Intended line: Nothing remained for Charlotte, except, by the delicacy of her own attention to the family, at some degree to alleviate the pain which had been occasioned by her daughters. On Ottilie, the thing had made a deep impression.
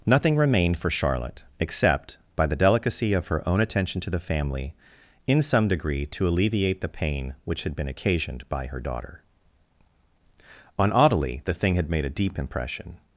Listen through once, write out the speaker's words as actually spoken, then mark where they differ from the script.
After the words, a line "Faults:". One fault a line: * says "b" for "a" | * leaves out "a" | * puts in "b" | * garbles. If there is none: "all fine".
Nothing remained for Charlotte, except, by the delicacy of her own attention to the family, in some degree to alleviate the pain which had been occasioned by her daughter. On Ottilie, the thing had made a deep impression.
Faults:
* says "in" for "at"
* says "daughter" for "daughters"